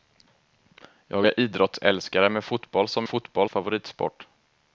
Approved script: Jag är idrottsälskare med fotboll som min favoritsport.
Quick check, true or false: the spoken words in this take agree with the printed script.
false